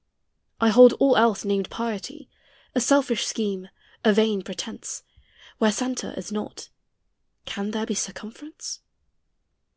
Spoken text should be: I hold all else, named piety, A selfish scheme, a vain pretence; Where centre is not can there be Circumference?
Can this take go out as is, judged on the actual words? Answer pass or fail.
pass